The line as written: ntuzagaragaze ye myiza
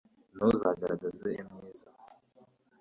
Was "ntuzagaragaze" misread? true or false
false